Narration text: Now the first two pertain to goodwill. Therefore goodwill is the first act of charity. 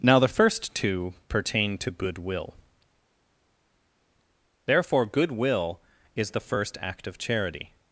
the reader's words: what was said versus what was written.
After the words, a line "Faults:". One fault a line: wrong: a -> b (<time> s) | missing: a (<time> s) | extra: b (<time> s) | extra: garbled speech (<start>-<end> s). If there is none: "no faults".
Now the first two pertain to goodwill. Therefore goodwill is the first act of charity.
Faults:
no faults